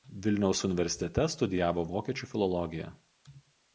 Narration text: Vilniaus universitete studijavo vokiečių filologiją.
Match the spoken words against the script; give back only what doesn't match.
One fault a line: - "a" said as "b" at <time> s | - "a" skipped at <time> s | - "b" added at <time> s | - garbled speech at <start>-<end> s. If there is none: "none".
none